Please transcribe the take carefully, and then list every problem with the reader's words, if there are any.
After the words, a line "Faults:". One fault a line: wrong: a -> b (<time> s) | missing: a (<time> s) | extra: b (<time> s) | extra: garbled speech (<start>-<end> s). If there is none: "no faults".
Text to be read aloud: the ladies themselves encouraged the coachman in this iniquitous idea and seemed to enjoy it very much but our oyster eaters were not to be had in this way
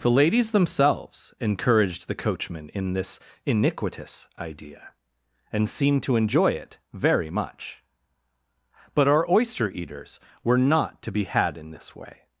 the ladies themselves encouraged the coachman in this iniquitous idea and seemed to enjoy it very much but our oyster eaters were not to be had in this way
Faults:
no faults